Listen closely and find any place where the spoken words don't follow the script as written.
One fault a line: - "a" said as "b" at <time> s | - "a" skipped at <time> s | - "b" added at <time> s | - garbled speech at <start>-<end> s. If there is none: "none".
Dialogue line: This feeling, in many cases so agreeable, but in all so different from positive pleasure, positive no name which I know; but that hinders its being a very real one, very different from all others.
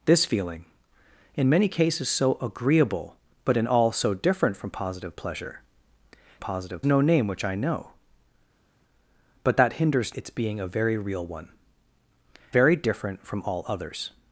none